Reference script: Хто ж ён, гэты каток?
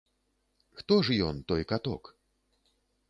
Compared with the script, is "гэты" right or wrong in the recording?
wrong